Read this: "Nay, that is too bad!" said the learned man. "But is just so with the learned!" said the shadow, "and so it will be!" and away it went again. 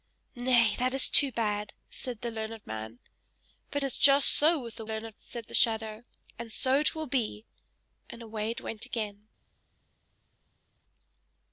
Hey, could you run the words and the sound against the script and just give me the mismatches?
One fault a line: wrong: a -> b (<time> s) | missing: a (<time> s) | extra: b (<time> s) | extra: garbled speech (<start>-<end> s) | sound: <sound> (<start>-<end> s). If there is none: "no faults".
no faults